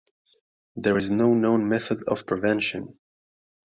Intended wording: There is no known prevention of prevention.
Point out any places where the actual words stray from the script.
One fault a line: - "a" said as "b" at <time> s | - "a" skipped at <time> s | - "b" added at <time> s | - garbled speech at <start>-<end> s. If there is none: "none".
- "prevention" said as "method" at 1.7 s